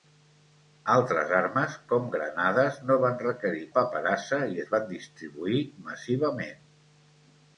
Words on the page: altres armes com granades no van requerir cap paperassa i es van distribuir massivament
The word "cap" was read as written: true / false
false